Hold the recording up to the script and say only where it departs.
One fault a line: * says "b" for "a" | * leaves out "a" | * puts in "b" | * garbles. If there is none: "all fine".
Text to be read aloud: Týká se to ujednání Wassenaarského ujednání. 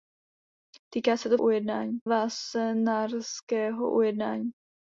all fine